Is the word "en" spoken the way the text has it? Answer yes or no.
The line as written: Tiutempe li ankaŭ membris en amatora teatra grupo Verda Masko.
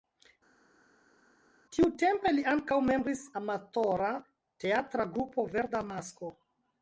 no